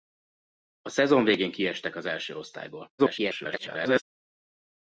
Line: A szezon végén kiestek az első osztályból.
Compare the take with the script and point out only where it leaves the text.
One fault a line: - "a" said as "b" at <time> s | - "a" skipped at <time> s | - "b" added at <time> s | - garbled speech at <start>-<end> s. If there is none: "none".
- garbled speech at 3.0-4.0 s